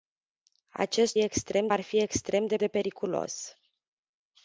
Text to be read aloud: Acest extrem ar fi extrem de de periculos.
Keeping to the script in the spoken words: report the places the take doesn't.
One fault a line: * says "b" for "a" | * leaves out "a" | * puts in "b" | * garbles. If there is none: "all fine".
all fine